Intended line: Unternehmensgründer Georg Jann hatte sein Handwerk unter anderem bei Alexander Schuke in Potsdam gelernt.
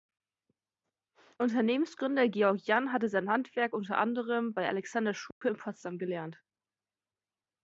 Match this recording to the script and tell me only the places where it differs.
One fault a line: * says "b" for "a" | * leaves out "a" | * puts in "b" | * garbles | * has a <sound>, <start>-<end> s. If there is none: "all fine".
* has a dropout, 5.3-5.4 s